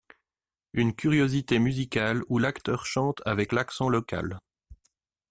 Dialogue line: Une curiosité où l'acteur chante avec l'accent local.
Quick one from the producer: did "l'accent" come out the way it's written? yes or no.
yes